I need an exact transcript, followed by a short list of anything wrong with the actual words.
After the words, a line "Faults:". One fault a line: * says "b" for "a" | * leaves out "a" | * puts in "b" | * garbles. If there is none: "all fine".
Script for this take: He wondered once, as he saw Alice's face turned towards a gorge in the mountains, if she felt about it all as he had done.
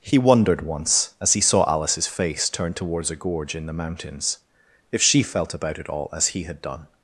He wondered once, as he saw Alice's face turned towards a gorge in the mountains, if she felt about it all as he had done.
Faults:
all fine